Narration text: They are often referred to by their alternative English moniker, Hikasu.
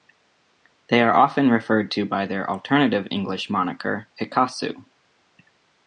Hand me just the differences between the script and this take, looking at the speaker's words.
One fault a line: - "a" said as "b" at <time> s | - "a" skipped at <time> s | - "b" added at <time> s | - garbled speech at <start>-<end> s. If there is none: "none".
none